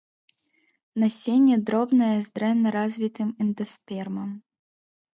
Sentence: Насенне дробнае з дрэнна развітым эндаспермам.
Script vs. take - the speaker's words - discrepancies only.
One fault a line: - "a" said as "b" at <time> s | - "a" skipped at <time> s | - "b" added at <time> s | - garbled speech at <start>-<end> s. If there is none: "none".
none